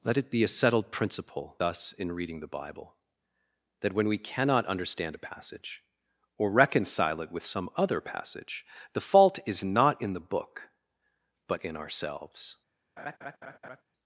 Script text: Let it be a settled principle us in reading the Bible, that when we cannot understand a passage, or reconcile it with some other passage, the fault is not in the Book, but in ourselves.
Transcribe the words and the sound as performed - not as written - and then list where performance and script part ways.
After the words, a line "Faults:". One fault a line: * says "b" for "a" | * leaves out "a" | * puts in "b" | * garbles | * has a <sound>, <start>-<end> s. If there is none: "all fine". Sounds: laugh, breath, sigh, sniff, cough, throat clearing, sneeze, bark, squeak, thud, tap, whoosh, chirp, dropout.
Let it be a settled principle us in reading the Bible, that when we cannot understand a passage, or reconcile it with some other passage, the fault is not in the Book, but in ourselves.
Faults:
* has a laugh, 13.0-13.8 s